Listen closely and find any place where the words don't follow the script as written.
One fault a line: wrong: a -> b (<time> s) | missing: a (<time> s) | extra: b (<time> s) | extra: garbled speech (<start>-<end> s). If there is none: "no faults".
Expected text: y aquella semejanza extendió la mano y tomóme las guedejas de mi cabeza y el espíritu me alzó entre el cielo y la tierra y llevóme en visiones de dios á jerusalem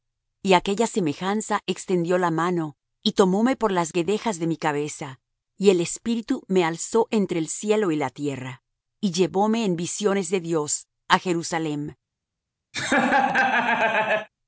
extra: por (3.5 s)